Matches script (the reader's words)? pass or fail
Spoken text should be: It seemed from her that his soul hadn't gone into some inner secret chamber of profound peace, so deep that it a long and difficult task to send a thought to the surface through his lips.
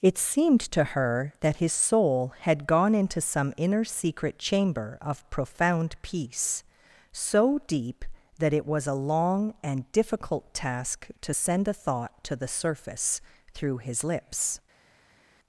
fail